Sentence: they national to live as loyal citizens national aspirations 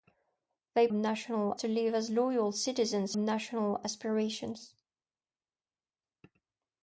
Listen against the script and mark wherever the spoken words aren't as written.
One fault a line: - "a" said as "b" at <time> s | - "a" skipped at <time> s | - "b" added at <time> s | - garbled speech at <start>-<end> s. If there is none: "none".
none